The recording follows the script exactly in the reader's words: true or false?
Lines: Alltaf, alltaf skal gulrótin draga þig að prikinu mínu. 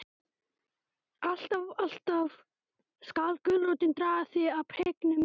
true